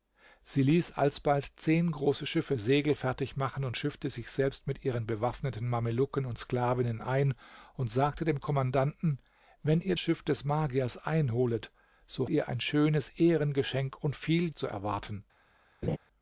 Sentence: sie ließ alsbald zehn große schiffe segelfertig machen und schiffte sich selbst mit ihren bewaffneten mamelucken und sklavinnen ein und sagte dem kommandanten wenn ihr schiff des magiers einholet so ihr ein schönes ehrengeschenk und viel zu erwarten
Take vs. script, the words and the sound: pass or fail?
fail